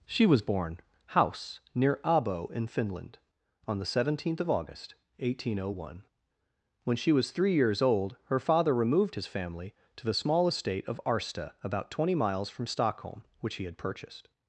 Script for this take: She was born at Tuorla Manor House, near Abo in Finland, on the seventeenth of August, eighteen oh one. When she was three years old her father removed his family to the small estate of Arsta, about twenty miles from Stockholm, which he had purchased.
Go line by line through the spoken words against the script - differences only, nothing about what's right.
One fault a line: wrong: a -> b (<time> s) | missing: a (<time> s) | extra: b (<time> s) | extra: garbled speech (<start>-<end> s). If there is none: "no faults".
missing: at Tuorla Manor (0.8 s)